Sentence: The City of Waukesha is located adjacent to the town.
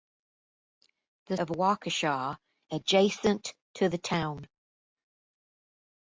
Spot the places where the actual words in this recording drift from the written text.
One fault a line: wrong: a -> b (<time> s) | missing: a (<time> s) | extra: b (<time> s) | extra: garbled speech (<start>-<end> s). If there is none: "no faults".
missing: City (1.4 s)
missing: is located (2.4 s)